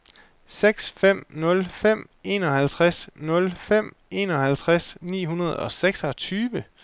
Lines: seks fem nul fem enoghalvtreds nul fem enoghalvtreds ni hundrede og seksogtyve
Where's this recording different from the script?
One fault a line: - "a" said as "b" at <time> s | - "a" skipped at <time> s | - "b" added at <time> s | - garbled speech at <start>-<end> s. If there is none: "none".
none